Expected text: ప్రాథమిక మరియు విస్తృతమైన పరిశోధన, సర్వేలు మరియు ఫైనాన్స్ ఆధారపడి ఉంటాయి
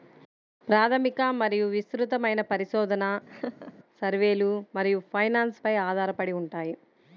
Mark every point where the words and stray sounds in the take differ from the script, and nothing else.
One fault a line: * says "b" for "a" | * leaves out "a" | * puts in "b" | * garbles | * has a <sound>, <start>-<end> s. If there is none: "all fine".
* has a laugh, 3.3-3.7 s
* puts in "పై"